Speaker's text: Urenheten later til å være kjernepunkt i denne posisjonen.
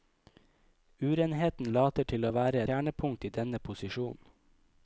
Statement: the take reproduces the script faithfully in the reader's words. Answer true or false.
true